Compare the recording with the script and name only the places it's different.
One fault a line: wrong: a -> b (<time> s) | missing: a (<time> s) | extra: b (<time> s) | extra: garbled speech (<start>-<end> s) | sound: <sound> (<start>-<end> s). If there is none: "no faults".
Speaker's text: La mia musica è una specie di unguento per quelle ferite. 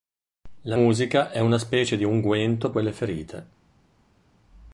missing: mia (0.8 s)
missing: per (2.7 s)